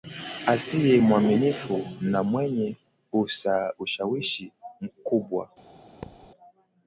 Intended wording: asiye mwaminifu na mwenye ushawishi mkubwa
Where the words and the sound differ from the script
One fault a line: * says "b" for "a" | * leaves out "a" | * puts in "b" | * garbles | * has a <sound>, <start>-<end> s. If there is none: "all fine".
* has a thud, 6.0-6.3 s